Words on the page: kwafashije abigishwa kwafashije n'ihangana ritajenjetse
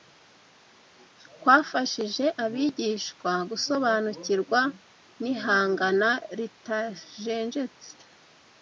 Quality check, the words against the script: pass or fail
fail